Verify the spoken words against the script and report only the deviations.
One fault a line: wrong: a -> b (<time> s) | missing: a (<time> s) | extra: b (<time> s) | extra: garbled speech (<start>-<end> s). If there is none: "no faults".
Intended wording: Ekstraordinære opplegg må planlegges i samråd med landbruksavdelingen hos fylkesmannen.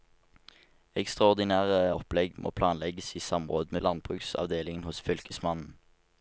missing: med (3.7 s)